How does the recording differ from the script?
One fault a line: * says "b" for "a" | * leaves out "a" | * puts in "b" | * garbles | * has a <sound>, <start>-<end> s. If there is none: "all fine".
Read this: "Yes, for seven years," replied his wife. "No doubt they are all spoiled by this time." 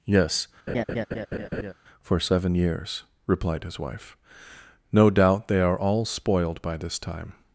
* has a laugh, 0.7-1.7 s